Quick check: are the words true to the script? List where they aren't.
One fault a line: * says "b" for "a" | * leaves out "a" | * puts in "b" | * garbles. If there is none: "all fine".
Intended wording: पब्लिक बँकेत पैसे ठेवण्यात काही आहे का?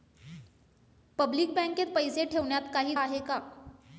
all fine